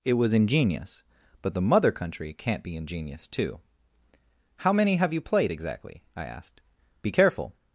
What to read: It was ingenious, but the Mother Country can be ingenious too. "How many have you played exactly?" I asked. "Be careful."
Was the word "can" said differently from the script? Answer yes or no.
yes